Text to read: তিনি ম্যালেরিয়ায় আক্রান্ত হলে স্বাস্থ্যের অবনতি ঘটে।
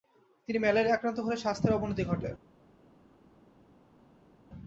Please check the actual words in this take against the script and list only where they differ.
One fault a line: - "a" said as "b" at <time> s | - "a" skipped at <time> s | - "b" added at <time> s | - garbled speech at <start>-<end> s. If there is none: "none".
none